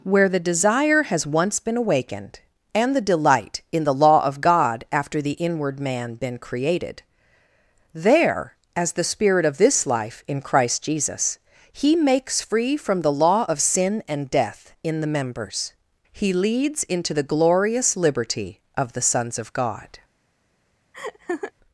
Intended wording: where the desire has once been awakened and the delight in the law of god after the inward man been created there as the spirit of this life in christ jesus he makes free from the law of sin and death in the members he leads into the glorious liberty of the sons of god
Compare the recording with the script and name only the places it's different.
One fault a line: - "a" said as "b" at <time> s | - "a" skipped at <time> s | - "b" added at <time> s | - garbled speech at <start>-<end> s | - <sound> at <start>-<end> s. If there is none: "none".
- laugh at 20.9-21.5 s